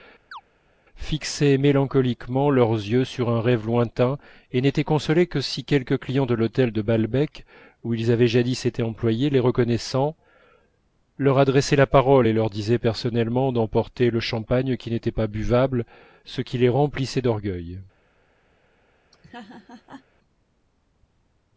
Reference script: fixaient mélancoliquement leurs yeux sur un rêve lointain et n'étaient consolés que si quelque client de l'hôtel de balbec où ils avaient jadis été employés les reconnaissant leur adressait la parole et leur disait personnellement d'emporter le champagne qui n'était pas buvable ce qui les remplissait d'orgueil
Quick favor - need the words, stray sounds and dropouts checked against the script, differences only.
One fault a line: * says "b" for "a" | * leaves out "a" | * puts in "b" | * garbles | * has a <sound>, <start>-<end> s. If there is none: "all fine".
* has a chirp, 0.3-0.4 s
* has a laugh, 19.1-20.0 s